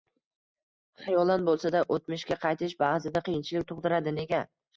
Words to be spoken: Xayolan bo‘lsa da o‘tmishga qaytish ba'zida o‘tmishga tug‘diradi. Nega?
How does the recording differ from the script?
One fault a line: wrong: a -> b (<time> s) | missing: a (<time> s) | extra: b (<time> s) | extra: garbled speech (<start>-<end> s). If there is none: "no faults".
wrong: o‘tmishga -> qiyinchilik (3.3 s)